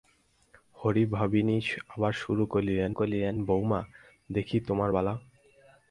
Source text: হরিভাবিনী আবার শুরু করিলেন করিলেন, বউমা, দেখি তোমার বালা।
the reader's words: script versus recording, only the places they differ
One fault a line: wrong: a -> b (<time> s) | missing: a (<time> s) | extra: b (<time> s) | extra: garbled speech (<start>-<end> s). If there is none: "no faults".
no faults